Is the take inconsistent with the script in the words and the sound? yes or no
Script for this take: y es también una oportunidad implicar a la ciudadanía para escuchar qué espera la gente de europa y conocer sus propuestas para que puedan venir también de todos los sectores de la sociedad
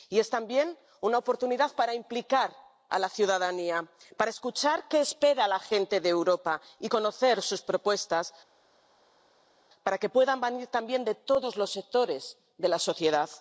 yes